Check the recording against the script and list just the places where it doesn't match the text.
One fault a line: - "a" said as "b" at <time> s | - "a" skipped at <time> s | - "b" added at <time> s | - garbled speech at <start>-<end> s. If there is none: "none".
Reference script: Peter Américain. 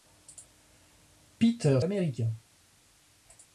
none